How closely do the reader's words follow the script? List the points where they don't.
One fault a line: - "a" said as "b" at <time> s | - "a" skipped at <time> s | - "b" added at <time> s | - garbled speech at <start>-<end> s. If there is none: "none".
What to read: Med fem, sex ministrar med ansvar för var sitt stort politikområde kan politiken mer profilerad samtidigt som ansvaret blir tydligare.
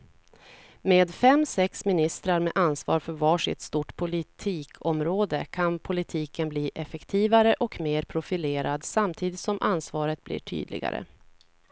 - "bli effektivare och" added at 6.5 s